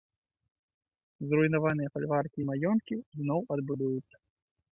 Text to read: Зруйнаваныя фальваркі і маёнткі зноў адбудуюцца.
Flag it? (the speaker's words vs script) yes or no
no